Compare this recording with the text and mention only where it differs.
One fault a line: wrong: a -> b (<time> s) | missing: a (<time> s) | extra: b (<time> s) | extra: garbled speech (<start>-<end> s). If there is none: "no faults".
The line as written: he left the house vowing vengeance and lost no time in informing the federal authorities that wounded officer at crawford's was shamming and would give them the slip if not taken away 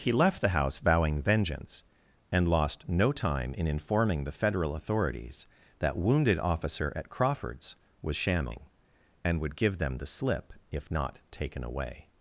no faults